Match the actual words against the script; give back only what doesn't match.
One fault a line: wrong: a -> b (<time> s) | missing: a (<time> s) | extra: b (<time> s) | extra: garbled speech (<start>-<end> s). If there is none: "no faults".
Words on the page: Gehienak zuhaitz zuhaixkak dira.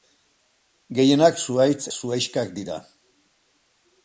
no faults